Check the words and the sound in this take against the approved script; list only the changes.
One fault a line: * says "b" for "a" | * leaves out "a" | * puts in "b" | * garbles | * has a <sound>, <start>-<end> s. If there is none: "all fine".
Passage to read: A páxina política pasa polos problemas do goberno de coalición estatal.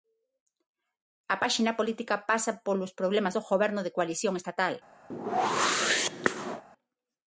* has a whoosh, 5.1-6.6 s